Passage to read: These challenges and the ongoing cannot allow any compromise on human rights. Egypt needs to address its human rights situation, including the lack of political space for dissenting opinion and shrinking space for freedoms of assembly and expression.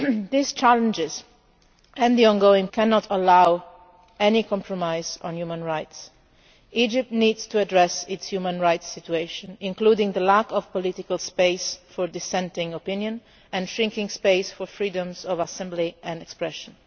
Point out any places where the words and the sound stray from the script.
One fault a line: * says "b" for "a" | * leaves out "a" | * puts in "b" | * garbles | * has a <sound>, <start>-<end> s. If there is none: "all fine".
all fine